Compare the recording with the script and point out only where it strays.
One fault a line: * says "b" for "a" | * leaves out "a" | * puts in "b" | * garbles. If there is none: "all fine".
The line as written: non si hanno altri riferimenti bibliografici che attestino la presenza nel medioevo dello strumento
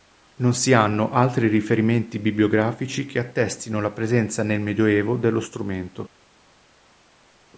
all fine